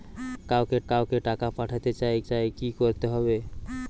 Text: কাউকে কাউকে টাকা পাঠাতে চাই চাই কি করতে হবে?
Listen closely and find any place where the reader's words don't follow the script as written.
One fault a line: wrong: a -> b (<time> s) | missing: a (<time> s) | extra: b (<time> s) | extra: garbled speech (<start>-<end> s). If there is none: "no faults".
no faults